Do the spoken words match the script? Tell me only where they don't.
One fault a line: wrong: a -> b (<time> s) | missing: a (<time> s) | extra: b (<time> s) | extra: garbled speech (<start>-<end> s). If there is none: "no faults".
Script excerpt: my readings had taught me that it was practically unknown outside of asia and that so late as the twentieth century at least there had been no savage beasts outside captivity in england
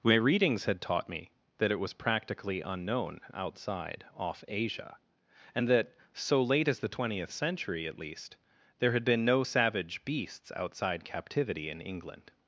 wrong: of -> off (4.2 s)